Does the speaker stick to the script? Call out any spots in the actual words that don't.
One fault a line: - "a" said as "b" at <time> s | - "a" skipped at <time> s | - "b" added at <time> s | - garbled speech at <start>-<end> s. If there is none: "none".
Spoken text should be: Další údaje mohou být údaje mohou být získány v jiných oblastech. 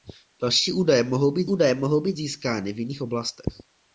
none